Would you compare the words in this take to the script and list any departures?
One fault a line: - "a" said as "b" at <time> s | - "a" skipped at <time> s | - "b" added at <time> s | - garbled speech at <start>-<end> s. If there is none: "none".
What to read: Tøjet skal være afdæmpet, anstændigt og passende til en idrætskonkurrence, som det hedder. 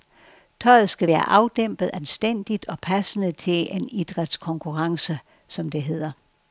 none